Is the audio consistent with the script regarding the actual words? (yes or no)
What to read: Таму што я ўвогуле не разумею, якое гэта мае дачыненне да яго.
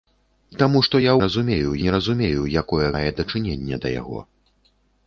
no